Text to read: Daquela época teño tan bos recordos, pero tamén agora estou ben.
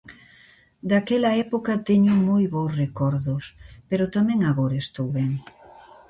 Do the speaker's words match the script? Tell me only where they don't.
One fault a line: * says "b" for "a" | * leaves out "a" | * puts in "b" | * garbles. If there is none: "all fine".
* says "moi" for "tan"